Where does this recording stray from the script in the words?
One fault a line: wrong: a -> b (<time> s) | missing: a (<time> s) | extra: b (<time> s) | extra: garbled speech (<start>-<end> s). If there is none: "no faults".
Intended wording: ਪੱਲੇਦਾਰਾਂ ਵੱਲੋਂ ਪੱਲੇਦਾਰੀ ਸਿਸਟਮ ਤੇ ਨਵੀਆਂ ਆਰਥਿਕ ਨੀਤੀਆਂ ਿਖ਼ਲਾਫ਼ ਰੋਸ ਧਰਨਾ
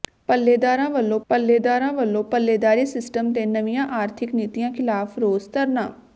extra: ਪੱਲੇਦਾਰਾਂ ਵੱਲੋਂ (1.3 s)